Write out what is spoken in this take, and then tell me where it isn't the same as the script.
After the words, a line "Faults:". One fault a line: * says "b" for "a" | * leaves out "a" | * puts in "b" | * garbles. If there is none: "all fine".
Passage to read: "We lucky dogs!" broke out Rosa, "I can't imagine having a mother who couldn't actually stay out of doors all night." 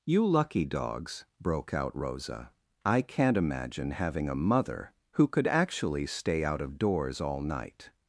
"You lucky dogs!" broke out Rosa, "I can't imagine having a mother who could actually stay out of doors all night."
Faults:
* says "You" for "We"
* says "could" for "couldn't"